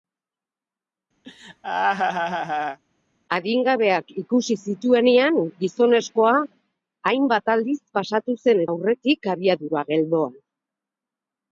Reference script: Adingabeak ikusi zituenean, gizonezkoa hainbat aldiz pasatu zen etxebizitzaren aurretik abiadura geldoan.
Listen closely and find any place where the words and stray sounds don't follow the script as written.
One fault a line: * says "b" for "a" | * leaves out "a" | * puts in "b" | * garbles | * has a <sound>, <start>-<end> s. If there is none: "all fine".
* has a laugh, 1.2-2.8 s
* leaves out "etxebizitzaren"